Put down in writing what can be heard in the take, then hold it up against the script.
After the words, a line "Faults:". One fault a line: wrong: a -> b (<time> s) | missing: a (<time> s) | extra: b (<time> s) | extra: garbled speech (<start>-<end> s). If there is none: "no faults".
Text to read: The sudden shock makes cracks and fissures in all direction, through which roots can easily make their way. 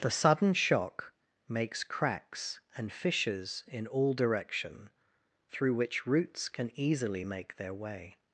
The sudden shock makes cracks and fissures in all direction, through which roots can easily make their way.
Faults:
no faults